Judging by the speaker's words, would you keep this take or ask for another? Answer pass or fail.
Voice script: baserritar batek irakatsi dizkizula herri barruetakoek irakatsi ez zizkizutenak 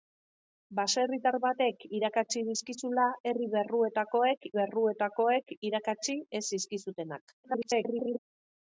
fail